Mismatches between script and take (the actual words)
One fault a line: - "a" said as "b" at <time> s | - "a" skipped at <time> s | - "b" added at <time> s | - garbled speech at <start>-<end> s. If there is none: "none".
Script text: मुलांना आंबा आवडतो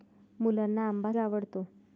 none